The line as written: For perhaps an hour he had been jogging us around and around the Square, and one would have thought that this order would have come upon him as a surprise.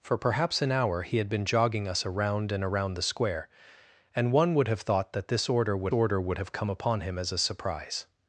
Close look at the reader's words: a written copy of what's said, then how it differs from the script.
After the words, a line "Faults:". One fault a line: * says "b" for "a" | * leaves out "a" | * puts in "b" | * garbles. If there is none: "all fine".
For perhaps an hour he had been jogging us around and around the Square, and one would have thought that this order would order would have come upon him as a surprise.
Faults:
* puts in "order would"